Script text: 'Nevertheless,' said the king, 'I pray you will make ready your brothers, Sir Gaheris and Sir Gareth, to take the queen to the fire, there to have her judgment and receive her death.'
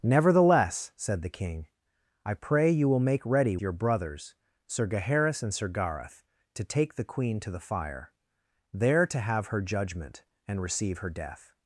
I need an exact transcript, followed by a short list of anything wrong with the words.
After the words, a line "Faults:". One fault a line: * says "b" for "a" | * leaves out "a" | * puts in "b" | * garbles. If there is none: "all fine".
'Nevertheless,' said the king, 'I pray you will make ready your brothers, Sir Gaheris and Sir Gareth, to take the queen to the fire, there to have her judgment and receive her death.'
Faults:
all fine